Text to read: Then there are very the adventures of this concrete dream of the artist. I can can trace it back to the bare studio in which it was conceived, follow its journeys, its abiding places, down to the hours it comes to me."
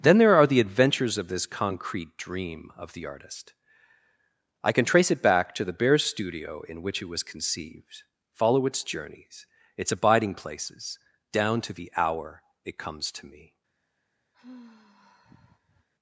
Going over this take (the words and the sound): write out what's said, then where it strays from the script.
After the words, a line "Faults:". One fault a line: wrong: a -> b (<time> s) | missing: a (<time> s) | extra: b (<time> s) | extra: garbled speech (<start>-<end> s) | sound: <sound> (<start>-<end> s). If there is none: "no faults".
Then there are the adventures of this concrete dream of the artist. I can trace it back to the bare studio in which it was conceived, follow its journeys, its abiding places, down to the hour it comes to me."
Faults:
missing: very (0.5 s)
missing: can (4.8 s)
wrong: hours -> hour (11.9 s)
sound: sigh (14.3-15.9 s)